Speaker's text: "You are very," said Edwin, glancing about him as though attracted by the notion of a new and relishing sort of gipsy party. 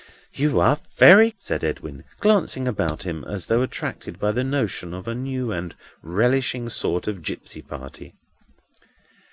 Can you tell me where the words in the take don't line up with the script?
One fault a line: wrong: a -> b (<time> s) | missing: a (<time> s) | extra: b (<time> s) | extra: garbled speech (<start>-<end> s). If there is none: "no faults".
no faults